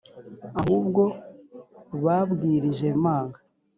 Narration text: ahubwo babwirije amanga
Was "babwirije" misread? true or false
false